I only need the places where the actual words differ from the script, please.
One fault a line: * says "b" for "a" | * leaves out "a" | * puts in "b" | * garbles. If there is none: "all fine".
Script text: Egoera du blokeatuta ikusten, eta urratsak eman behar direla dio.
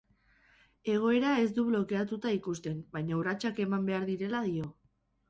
* puts in "ez"
* says "baina" for "eta"